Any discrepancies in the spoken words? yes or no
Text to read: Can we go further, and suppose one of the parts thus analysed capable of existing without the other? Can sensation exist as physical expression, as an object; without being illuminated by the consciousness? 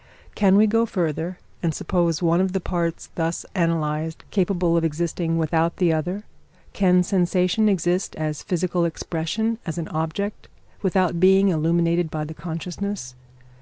no